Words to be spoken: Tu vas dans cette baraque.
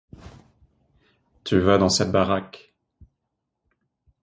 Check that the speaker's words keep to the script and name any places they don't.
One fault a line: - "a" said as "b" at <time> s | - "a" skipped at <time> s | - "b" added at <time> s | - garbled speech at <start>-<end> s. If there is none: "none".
none